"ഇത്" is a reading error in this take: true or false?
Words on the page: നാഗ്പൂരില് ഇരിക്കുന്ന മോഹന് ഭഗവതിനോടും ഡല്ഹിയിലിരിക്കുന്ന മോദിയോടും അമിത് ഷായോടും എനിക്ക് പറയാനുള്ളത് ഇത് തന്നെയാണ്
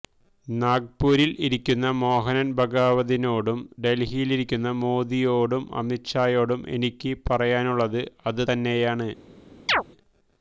true